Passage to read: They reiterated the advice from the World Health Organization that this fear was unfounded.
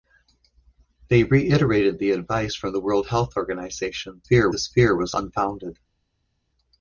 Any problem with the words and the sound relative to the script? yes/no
yes